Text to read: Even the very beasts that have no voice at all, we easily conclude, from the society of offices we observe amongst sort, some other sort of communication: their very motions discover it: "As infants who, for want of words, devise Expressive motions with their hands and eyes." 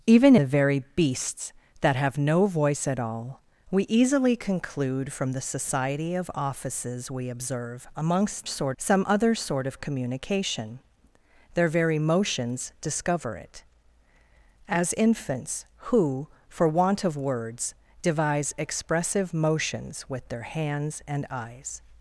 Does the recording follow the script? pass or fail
pass